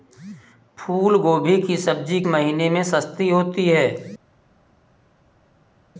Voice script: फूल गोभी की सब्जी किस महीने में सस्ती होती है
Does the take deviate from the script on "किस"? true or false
true